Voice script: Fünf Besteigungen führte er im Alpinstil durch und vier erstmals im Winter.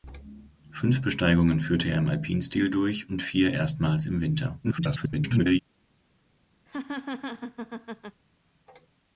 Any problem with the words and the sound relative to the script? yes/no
yes